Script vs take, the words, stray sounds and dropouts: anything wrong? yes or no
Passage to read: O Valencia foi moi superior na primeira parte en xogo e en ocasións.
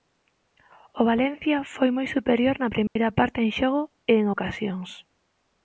yes